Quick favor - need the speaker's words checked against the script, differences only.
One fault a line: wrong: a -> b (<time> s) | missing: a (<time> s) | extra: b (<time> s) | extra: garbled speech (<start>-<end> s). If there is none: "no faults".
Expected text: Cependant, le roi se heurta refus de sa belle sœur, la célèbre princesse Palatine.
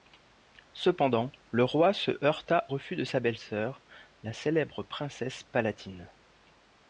no faults